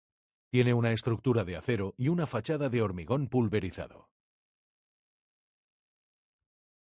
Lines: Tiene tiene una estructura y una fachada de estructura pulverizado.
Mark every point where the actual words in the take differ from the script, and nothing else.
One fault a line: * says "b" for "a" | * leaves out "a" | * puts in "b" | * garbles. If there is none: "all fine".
* leaves out "tiene"
* puts in "de acero"
* says "hormigón" for "estructura"